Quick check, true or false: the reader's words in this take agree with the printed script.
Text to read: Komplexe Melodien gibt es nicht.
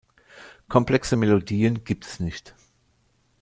true